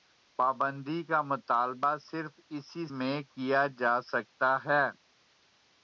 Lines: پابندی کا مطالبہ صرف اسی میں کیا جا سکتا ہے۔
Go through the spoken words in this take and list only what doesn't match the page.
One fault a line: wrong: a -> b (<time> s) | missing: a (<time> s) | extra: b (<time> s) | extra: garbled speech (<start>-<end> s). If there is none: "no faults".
no faults